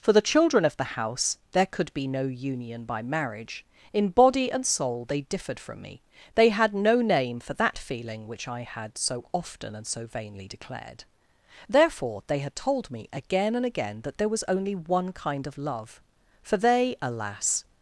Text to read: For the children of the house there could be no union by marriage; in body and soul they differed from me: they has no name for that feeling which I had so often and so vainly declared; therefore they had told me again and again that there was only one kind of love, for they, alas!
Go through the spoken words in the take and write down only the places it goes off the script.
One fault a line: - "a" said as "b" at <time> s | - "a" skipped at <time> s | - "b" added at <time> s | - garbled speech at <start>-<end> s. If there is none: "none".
- "has" said as "had" at 6.5 s